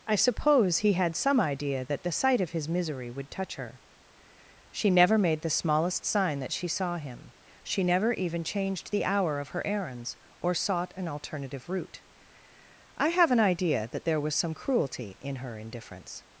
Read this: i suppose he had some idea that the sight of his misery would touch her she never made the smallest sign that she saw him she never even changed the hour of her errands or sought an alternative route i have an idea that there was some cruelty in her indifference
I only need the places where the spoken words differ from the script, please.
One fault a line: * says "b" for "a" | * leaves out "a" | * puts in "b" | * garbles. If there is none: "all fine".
all fine